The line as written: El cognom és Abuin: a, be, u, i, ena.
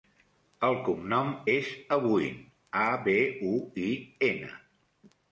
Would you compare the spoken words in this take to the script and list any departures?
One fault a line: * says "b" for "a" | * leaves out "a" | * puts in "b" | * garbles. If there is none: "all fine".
all fine